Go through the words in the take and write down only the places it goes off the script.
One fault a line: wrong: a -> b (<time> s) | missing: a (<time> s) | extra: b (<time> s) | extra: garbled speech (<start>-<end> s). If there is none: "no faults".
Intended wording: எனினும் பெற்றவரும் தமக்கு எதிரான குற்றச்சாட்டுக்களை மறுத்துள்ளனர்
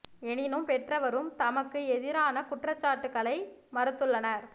no faults